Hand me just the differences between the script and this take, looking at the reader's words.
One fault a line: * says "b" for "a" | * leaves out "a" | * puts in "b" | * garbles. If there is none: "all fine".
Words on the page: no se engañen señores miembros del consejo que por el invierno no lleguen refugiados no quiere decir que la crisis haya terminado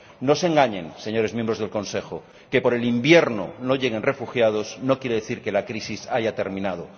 all fine